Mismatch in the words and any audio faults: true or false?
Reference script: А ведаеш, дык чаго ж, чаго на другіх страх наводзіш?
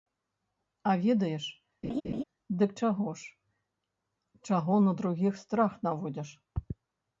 true